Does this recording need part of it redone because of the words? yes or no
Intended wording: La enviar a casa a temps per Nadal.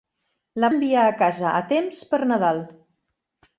no